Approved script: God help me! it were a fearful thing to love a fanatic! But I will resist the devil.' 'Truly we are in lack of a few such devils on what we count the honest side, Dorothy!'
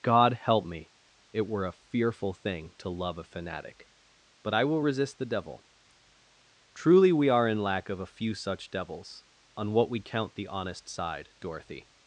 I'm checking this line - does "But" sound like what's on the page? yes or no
yes